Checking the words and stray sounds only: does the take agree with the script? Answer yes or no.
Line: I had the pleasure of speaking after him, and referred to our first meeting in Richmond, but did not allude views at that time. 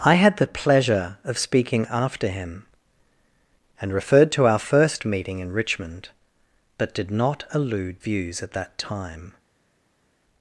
yes